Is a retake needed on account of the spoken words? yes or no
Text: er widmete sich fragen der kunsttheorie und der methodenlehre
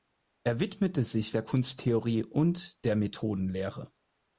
yes